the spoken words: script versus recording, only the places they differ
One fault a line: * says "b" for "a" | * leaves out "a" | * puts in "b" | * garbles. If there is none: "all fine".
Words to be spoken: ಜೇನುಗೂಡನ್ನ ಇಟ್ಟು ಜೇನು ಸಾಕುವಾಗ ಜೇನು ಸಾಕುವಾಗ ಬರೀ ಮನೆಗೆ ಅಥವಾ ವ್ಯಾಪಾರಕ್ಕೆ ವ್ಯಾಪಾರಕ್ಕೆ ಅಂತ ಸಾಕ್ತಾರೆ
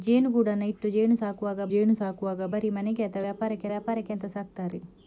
all fine